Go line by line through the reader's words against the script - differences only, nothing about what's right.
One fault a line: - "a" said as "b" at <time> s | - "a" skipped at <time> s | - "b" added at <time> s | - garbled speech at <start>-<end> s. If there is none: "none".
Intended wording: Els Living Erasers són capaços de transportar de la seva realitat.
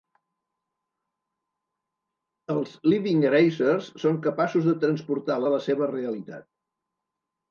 none